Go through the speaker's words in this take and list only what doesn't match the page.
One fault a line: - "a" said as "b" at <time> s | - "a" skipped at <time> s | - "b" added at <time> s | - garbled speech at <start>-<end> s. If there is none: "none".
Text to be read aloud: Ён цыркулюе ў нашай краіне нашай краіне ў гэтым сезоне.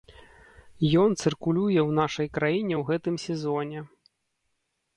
- "нашай краіне" skipped at 2.8 s